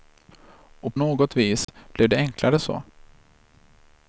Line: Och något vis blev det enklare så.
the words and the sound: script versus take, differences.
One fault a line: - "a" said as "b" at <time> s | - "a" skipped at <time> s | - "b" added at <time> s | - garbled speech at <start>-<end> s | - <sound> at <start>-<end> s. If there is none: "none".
- dropout at 1.6-1.7 s